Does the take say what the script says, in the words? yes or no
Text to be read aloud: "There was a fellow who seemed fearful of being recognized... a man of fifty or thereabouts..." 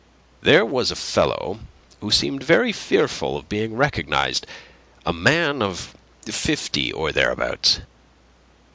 no